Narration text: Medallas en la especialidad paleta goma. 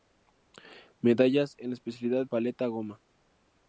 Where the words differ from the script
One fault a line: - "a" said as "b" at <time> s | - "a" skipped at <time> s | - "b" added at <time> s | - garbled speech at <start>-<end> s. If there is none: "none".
none